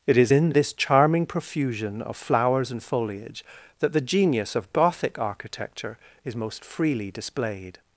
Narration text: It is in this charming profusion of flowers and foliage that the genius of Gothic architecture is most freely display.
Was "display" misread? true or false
true